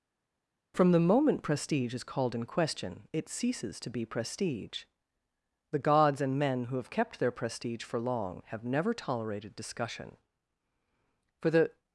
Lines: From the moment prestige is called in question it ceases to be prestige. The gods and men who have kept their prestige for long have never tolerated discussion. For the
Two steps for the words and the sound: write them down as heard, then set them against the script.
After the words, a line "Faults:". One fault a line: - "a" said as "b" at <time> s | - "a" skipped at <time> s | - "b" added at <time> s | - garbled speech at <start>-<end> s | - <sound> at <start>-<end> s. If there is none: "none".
From the moment prestige is called in question it ceases to be prestige. The gods and men who have kept their prestige for long have never tolerated discussion. For the
Faults:
none